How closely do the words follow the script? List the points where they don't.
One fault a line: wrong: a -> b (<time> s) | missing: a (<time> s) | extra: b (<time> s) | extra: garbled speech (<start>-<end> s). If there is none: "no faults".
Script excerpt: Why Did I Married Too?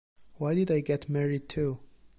extra: Get (0.8 s)